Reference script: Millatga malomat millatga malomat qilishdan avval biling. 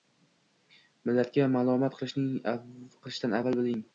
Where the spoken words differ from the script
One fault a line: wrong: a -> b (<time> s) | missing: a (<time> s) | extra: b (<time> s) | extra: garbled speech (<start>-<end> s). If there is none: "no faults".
missing: millatga malomat (2.0 s)